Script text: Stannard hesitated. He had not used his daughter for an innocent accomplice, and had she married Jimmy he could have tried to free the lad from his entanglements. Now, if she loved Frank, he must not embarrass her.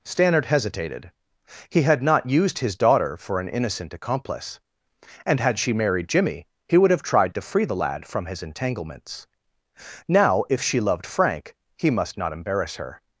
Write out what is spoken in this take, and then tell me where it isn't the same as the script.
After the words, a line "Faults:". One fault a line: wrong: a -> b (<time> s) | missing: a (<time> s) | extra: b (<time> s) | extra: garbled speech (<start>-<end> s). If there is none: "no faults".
Stannard hesitated. He had not used his daughter for an innocent accomplice, and had she married Jimmy he would have tried to free the lad from his entanglements. Now, if she loved Frank, he must not embarrass her.
Faults:
wrong: could -> would (6.8 s)